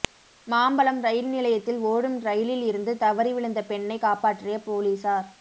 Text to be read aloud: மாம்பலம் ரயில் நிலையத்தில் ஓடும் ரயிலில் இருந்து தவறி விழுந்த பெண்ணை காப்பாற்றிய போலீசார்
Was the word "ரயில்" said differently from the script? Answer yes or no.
no